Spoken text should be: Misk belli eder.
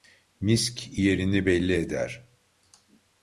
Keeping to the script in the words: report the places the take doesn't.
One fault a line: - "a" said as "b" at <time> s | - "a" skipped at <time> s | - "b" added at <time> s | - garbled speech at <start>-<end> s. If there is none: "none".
- "yerini" added at 1.0 s